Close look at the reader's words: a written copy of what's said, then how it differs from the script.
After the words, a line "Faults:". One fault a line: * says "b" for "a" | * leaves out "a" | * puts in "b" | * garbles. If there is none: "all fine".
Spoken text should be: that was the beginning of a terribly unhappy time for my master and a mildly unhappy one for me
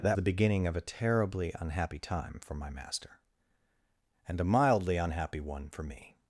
that the beginning of a terribly unhappy time for my master and a mildly unhappy one for me
Faults:
* leaves out "was"